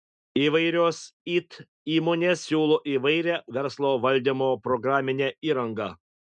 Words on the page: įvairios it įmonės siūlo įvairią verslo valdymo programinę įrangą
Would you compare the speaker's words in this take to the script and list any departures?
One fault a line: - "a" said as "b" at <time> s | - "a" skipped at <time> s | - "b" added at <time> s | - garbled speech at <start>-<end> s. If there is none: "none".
none